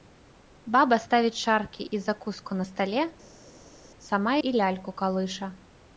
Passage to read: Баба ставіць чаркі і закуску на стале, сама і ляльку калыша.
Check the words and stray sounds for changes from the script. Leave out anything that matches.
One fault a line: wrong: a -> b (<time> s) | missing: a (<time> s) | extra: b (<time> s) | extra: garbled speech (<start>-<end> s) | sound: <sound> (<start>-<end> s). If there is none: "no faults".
no faults